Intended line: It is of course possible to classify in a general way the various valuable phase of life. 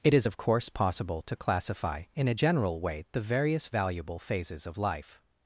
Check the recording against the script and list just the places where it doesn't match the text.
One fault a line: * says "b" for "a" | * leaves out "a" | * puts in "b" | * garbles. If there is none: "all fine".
* says "phases" for "phase"